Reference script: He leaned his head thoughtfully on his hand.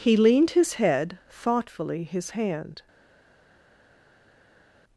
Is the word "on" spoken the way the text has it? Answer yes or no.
no